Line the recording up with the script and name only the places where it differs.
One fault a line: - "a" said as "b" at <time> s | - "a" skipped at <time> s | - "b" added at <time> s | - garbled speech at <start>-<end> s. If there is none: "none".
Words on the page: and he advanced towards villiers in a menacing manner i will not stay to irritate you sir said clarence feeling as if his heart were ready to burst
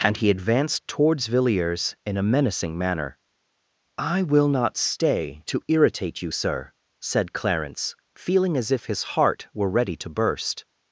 none